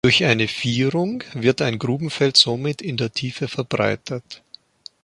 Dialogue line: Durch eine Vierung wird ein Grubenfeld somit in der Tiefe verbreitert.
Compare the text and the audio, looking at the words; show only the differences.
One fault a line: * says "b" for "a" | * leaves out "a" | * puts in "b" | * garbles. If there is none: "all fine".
all fine